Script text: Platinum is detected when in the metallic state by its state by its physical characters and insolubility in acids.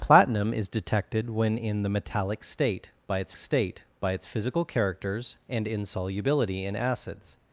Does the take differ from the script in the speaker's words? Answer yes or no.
no